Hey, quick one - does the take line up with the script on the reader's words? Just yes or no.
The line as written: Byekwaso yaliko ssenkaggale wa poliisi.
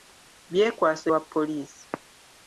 no